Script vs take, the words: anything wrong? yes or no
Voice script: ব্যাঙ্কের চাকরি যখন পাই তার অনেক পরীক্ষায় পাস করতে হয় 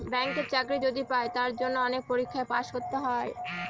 yes